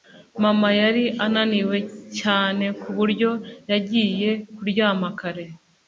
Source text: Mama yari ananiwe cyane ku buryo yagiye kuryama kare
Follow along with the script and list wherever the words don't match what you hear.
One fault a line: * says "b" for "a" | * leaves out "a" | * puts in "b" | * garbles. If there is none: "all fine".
all fine